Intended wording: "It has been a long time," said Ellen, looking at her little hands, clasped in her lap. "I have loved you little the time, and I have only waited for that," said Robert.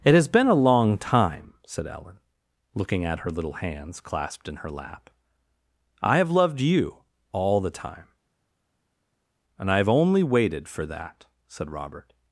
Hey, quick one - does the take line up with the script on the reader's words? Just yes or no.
no